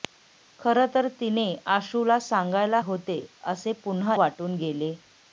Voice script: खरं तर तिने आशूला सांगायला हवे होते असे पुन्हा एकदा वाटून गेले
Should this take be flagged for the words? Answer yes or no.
yes